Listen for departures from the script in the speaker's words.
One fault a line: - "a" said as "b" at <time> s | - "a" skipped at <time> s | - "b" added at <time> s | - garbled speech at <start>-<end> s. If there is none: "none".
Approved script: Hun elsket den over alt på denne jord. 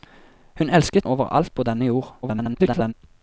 - "den" skipped at 1.1 s
- garbled speech at 2.2-2.9 s